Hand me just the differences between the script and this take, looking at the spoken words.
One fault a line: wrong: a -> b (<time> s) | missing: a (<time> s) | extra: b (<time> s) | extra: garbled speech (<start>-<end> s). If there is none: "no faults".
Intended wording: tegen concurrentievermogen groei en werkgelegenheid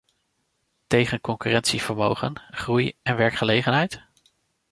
no faults